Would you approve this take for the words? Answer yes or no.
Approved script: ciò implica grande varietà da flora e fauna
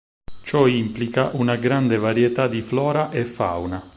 no